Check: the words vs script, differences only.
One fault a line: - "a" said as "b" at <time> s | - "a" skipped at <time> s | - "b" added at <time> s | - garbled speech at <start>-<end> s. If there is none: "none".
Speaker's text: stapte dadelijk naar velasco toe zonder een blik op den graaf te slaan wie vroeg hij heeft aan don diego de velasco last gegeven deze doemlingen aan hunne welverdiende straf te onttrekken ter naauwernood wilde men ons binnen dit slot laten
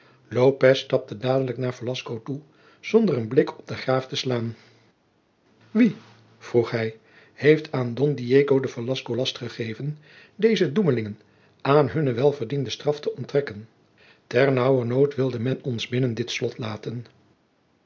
none